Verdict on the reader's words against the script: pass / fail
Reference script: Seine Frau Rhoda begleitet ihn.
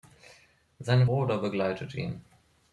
fail